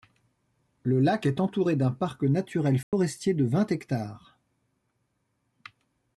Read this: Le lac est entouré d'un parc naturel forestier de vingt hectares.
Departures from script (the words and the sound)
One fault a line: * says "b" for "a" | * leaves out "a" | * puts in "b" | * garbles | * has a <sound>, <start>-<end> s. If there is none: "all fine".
* has a dropout, 2.8-2.9 s